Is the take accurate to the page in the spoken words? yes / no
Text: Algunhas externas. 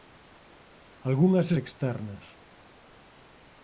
yes